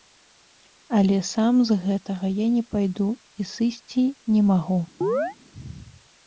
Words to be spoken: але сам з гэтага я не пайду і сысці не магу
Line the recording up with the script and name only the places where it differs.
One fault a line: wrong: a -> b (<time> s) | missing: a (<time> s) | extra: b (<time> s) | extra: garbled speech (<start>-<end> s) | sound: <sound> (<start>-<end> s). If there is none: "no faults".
sound: chirp (5.0-5.4 s)